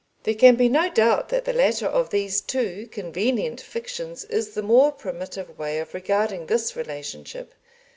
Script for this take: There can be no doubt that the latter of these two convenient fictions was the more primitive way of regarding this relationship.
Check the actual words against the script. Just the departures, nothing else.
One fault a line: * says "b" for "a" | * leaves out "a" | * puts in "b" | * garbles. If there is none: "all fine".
* says "is" for "was"